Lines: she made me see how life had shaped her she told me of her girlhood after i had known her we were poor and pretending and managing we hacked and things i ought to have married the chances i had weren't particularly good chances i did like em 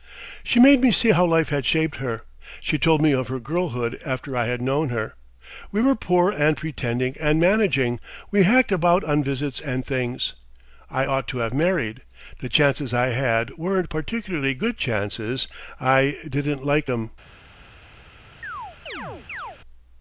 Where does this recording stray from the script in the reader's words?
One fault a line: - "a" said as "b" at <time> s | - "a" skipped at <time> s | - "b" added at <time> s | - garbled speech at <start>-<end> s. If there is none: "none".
- "about on visits" added at 8.7 s
- "did" said as "didn't" at 16.3 s